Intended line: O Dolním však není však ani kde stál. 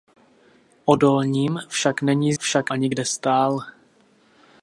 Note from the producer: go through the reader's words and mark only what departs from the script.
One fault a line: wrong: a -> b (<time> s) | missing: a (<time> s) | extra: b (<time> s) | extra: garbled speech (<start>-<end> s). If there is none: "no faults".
no faults